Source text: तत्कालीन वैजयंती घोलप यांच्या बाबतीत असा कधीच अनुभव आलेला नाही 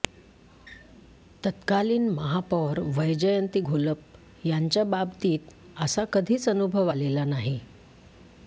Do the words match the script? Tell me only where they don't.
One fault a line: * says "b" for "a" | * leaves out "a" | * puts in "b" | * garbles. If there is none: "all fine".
* puts in "महापौर"